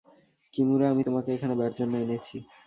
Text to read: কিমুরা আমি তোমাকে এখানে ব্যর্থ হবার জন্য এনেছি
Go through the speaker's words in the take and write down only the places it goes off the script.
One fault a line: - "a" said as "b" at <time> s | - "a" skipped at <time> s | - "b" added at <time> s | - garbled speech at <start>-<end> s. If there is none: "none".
- "হবার" skipped at 1.8 s